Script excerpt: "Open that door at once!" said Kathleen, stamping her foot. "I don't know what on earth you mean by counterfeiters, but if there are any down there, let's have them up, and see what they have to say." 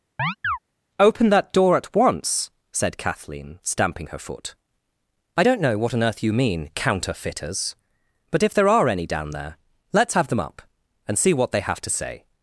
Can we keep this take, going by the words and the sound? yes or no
no